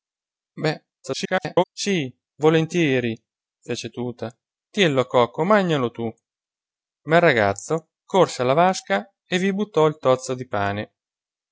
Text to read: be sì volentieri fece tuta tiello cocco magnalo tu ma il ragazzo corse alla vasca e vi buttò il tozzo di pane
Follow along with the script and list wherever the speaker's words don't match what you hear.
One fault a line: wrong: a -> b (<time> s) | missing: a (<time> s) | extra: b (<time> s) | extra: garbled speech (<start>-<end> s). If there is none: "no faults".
extra: garbled speech (1.0-1.6 s)